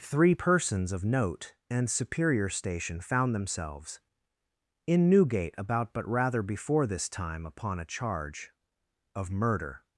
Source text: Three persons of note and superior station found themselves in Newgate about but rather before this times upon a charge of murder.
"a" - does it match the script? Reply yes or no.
yes